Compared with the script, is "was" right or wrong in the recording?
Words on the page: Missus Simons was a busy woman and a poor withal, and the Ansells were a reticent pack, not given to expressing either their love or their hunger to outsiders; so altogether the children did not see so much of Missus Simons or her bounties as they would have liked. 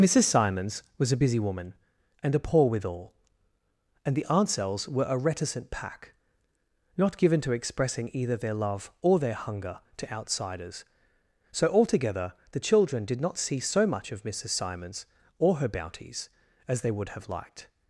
right